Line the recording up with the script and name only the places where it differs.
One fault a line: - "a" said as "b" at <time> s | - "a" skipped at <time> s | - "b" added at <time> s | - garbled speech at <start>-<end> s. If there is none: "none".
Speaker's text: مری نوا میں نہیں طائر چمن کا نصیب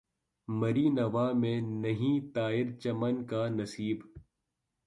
none